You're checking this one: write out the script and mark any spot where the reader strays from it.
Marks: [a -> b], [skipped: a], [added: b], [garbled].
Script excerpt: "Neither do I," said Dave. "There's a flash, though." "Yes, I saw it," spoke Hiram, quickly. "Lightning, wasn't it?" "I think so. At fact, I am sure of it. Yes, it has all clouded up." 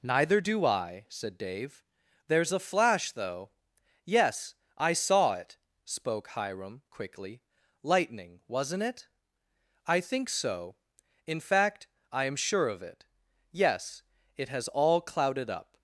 "Neither do I," said Dave. "There's a flash, though." "Yes, I saw it," spoke Hiram, quickly. "Lightning, wasn't it?" "I think so. [At -> In] fact, I am sure of it. Yes, it has all clouded up."